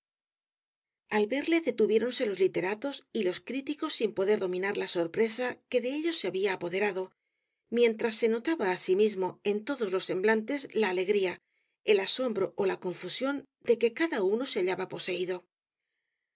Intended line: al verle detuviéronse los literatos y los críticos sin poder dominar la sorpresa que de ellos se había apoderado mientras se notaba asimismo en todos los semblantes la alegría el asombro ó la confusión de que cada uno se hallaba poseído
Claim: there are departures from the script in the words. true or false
false